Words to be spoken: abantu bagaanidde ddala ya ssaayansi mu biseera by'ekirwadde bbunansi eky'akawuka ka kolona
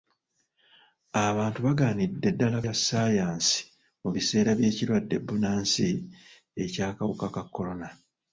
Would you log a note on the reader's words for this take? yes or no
no